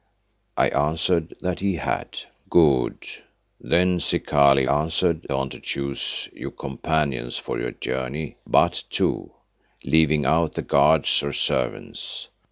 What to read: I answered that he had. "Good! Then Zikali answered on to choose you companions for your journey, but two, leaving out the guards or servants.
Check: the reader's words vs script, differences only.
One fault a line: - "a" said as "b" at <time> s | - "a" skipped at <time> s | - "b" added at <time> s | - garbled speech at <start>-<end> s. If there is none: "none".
none